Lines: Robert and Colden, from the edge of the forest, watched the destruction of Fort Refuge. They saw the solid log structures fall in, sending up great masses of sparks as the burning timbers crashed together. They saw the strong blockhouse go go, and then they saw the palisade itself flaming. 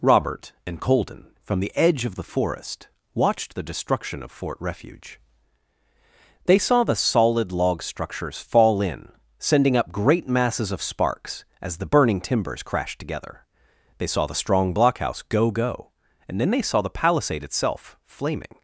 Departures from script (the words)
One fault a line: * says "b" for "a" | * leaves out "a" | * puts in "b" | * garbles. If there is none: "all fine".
all fine